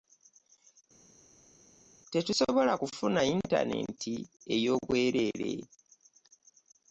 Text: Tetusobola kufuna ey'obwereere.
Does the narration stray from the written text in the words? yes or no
yes